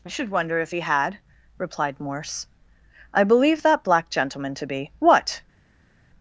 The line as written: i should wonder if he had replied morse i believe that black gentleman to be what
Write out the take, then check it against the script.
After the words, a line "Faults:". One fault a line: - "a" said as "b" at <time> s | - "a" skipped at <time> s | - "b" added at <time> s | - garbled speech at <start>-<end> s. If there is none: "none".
i should wonder if he had replied morse i believe that black gentleman to be what
Faults:
none